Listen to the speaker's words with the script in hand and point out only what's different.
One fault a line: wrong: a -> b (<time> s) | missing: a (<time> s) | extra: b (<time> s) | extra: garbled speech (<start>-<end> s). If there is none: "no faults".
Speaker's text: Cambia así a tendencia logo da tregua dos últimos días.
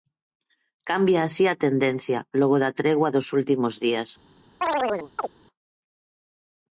no faults